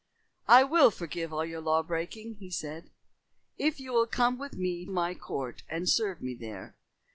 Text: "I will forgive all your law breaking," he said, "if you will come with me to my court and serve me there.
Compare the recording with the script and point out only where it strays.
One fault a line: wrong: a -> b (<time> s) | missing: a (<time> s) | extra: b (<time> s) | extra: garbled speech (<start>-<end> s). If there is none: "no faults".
missing: to (4.9 s)